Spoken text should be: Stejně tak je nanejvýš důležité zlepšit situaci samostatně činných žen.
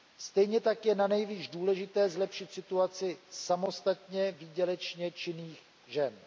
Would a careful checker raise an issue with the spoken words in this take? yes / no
yes